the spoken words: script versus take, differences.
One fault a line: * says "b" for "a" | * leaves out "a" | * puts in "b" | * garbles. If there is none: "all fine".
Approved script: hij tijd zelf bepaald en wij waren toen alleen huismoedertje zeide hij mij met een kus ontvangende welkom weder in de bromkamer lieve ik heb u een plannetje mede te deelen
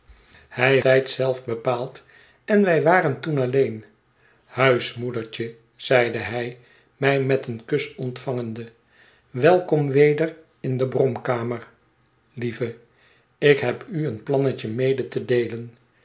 all fine